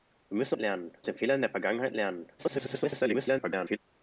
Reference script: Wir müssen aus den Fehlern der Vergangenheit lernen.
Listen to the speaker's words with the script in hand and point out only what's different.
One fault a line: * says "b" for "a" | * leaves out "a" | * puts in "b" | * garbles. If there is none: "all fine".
* says "lernen" for "aus"
* garbles